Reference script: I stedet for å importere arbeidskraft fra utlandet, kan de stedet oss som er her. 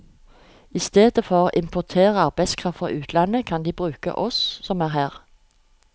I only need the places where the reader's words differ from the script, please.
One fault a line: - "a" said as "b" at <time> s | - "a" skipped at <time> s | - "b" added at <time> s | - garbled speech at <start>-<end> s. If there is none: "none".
- "stedet" said as "bruke" at 3.8 s